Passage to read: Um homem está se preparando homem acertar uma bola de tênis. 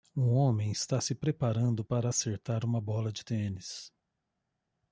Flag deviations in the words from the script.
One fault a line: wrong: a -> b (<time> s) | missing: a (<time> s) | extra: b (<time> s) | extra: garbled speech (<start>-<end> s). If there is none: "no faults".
wrong: homem -> para (1.8 s)